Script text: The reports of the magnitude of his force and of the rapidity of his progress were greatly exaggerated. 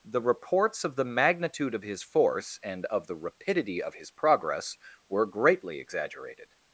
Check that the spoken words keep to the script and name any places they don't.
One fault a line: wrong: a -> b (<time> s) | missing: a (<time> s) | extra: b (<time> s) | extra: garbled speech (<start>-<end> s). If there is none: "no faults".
no faults